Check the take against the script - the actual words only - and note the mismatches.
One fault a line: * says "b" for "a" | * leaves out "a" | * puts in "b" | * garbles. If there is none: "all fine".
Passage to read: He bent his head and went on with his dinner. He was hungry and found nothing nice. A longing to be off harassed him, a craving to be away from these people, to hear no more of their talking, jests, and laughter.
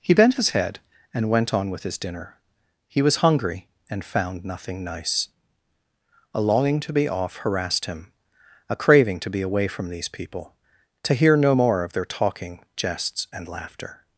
all fine